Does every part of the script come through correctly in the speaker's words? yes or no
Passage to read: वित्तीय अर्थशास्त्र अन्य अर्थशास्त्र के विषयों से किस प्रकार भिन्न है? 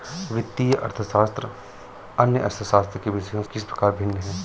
no